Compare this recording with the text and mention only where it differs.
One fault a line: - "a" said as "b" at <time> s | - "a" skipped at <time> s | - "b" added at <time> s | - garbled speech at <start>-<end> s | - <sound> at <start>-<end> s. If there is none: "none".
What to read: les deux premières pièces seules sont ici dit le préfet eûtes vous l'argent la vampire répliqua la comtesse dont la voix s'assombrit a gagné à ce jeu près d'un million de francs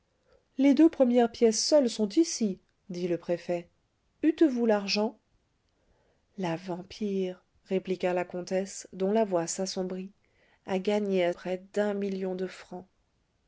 - "ce jeu" skipped at 11.3 s